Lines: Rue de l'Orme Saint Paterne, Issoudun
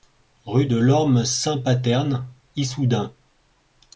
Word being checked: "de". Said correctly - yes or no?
yes